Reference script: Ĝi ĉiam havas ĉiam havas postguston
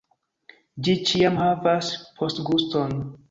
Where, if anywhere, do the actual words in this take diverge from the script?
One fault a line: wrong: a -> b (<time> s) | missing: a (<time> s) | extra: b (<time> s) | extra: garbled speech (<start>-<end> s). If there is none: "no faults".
missing: ĉiam havas (1.9 s)